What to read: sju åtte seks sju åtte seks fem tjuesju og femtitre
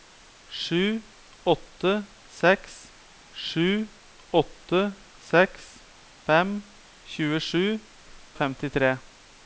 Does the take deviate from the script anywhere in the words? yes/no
no